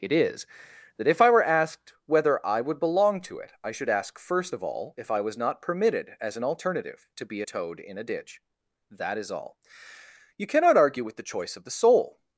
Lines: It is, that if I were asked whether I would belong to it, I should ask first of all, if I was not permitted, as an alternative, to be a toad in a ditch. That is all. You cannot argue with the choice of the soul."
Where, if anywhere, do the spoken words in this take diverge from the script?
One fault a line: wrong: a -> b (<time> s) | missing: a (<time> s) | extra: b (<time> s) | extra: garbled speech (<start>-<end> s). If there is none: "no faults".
no faults